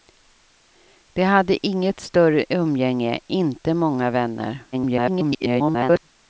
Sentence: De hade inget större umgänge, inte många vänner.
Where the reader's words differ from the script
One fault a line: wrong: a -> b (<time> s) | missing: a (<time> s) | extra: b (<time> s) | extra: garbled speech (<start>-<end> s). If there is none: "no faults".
extra: garbled speech (4.7-6.0 s)